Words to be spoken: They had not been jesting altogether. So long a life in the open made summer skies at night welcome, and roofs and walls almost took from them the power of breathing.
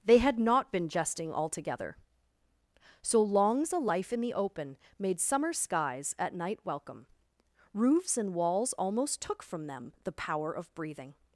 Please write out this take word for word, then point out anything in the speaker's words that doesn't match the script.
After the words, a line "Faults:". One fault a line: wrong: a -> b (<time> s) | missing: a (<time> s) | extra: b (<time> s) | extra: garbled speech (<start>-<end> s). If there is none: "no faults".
They had not been jesting altogether. So longs a life in the open made summer skies at night welcome, roofs and walls almost took from them the power of breathing.
Faults:
wrong: long -> longs (3.2 s)
missing: and (7.1 s)